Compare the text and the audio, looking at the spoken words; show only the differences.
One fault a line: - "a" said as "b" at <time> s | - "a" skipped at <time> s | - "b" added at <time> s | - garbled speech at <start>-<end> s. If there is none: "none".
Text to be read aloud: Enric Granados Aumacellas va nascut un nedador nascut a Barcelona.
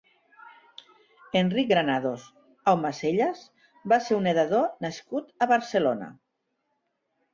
- "nascut" said as "ser" at 4.1 s